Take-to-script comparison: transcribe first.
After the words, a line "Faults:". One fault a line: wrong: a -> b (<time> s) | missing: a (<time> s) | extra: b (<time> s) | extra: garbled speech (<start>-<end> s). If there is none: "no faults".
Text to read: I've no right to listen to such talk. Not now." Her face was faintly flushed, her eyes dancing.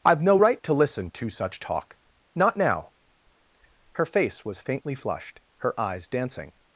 I've no right to listen to such talk. Not now." Her face was faintly flushed, her eyes dancing.
Faults:
no faults